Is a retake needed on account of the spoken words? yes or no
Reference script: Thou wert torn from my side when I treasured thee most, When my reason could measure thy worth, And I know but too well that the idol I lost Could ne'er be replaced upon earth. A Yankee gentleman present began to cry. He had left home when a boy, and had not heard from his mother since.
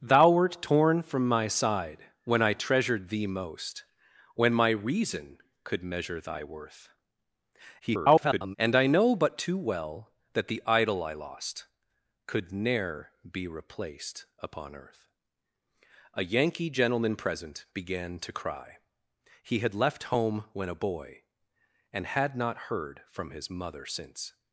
yes